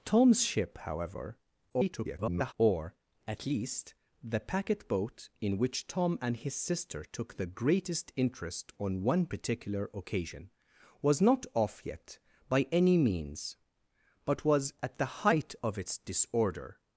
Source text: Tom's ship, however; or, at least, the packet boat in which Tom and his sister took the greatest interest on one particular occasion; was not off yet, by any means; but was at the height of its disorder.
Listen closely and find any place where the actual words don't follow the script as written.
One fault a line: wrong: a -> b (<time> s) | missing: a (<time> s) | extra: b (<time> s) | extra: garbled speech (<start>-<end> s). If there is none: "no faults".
extra: garbled speech (1.7-2.5 s)